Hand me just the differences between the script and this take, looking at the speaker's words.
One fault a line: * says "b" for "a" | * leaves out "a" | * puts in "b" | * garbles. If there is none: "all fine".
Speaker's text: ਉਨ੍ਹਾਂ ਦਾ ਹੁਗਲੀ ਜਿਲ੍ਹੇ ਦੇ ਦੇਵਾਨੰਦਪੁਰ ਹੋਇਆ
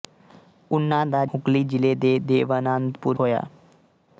all fine